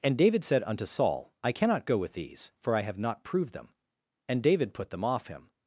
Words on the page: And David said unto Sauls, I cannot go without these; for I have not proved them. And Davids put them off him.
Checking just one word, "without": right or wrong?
wrong